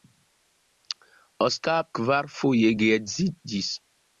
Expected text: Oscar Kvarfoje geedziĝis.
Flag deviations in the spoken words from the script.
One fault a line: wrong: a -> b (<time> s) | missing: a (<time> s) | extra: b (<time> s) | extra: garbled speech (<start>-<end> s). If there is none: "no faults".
no faults